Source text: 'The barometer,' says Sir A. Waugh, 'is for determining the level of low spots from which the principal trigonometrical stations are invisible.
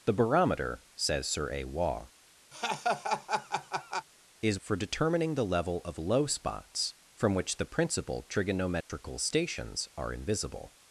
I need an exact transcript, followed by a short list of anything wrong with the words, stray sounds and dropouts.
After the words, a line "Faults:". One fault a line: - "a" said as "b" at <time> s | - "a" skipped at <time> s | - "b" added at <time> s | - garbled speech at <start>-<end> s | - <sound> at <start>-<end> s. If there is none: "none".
'The barometer,' says Sir A. Waugh, 'is for determining the level of low spots from which the principal trigonometrical stations are invisible.
Faults:
- laugh at 2.5-4.1 s
- dropout at 8.8-8.9 s